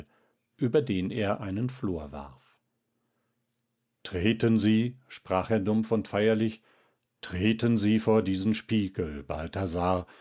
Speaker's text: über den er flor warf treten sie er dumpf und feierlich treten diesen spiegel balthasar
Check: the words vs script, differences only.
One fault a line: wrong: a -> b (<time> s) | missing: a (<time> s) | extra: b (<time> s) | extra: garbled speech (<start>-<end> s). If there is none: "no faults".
extra: einen (1.4 s)
extra: sprach (5.1 s)
extra: sie vor (7.8 s)